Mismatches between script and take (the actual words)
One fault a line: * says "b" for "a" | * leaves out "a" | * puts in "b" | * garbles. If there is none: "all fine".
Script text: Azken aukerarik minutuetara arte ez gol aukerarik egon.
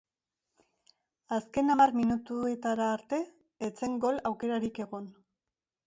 * says "hamar" for "aukerarik"
* puts in "zen"